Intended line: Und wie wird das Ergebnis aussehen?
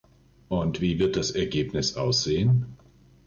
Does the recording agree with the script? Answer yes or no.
yes